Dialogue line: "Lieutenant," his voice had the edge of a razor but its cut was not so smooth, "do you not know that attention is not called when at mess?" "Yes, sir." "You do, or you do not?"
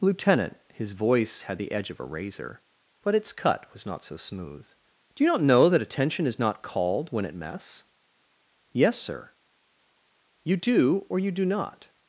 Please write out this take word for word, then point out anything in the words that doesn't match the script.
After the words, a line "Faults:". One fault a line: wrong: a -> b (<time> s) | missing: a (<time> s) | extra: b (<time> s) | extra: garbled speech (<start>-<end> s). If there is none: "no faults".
"Lieutenant," his voice had the edge of a razor but its cut was not so smooth, "do you not know that attention is not called when at mess?" "Yes, sir." "You do, or you do not?"
Faults:
no faults